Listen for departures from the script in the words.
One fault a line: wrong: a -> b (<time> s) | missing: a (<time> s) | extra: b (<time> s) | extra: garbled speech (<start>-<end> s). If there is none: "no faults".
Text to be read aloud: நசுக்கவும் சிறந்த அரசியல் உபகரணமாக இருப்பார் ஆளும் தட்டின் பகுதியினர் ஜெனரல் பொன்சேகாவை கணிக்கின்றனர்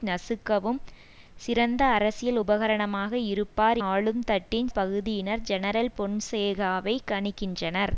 no faults